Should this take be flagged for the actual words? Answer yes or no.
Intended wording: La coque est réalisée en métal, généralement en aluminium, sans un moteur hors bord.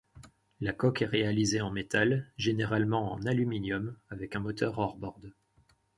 yes